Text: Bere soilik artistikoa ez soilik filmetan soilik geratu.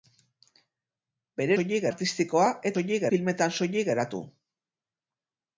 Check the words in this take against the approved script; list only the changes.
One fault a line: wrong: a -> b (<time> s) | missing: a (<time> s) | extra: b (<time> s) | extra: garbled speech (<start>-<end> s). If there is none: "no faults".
no faults